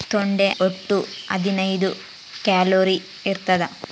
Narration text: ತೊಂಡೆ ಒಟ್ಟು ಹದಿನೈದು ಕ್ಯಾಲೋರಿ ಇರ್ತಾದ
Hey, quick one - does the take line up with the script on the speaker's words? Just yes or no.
yes